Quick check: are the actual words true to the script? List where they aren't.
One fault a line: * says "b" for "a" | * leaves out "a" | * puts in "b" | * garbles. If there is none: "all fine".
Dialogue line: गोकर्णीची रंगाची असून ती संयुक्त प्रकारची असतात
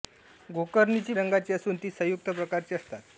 all fine